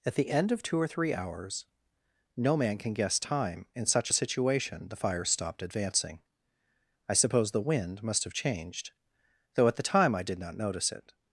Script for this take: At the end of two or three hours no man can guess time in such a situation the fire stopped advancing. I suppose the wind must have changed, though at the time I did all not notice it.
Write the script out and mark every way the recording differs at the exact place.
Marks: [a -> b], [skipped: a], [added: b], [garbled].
At the end of two or three hours no man can guess time in such a situation the fire stopped advancing. I suppose the wind must have changed, though at the time I did [skipped: all] not notice it.